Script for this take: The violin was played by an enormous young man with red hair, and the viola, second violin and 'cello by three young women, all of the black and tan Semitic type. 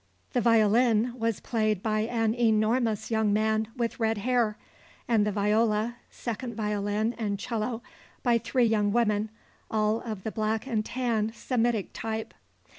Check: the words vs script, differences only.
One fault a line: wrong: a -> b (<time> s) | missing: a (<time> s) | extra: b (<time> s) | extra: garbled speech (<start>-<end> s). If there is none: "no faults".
no faults